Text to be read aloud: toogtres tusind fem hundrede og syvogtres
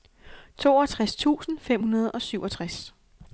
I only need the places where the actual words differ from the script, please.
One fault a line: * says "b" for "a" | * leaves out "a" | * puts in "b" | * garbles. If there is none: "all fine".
all fine